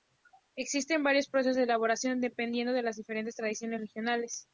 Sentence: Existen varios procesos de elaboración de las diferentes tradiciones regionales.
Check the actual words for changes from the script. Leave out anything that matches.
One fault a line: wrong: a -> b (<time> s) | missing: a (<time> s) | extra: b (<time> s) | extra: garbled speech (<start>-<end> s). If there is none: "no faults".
extra: dependiendo (2.2 s)